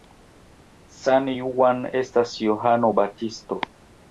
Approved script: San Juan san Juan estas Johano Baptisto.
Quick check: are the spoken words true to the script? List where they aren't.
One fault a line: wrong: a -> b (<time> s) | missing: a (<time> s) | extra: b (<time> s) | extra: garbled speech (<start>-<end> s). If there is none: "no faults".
missing: san Juan (1.8 s)